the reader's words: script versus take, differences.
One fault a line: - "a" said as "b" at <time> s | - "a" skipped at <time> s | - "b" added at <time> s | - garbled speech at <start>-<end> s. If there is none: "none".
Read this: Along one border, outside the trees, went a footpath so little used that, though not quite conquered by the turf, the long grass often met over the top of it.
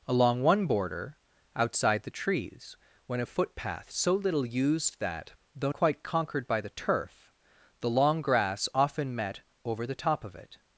- "not" skipped at 5.7 s